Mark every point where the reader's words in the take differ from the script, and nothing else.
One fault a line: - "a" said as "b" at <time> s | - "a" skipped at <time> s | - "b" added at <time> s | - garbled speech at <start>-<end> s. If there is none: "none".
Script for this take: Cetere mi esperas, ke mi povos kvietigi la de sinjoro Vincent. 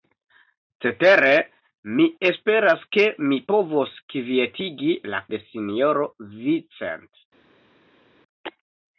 none